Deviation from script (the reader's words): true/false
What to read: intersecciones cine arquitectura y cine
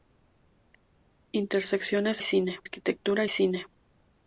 false